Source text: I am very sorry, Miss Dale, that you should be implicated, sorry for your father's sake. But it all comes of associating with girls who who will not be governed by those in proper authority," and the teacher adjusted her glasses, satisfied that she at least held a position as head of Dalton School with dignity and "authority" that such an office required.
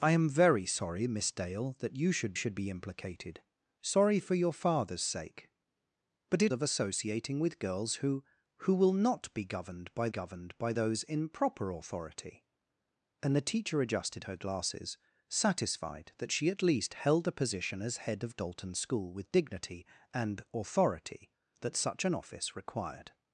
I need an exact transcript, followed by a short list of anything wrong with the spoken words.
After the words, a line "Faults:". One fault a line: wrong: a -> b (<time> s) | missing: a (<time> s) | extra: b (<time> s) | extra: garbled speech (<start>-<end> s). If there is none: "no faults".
I am very sorry, Miss Dale, that you should should be implicated, sorry for your father's sake. But it of associating with girls who who will not be governed by governed by those in proper authority," and the teacher adjusted her glasses, satisfied that she at least held a position as head of Dalton School with dignity and "authority" that such an office required.
Faults:
extra: should (2.3 s)
missing: all comes (6.5 s)
extra: governed by (10.1 s)